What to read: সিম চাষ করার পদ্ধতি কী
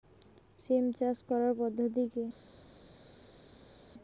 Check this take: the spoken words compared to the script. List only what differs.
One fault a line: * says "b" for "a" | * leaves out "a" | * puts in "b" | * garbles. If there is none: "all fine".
all fine